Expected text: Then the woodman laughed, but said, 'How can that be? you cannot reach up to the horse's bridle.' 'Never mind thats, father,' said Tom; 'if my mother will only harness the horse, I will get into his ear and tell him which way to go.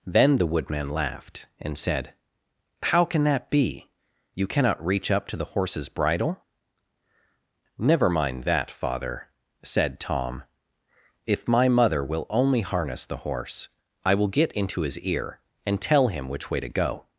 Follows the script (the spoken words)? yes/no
no